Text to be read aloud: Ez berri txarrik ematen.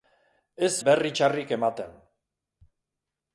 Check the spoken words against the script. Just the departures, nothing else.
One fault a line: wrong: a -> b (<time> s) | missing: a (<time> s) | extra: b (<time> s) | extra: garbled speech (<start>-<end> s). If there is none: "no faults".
no faults